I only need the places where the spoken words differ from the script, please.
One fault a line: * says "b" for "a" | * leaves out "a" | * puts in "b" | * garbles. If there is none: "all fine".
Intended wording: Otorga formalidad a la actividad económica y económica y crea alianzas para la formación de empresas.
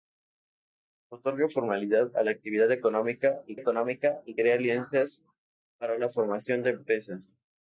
all fine